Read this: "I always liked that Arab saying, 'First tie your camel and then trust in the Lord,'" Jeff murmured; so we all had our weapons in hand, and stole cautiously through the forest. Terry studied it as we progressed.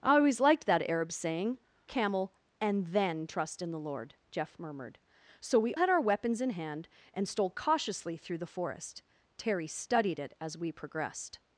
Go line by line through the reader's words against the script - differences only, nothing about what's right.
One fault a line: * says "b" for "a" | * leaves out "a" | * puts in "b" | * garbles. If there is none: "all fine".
* leaves out "First tie your"
* leaves out "all"